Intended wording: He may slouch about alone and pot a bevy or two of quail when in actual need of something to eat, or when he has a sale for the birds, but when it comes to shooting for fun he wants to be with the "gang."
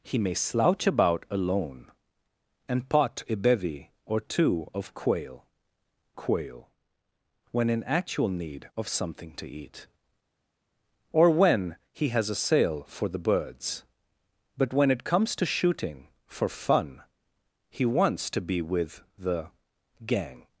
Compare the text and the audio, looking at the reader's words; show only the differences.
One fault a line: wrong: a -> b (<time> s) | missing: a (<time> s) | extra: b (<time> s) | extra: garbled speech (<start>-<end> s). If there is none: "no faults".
extra: quail (6.1 s)